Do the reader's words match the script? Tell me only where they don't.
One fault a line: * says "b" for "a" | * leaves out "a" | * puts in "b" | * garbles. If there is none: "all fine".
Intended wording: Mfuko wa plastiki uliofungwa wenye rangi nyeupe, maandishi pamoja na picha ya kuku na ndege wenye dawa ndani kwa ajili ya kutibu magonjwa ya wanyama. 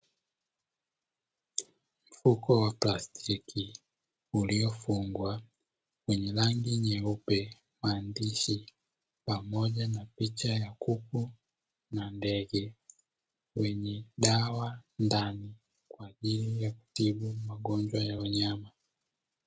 all fine